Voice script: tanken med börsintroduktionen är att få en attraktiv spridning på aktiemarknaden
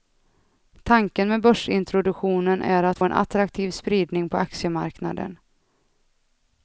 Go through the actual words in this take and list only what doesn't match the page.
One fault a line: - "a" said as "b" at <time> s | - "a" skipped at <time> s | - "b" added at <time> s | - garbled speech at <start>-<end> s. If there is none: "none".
- "få" skipped at 3.0 s